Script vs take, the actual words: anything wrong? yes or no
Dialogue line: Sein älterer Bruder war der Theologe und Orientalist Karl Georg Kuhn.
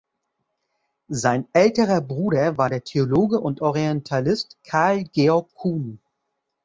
no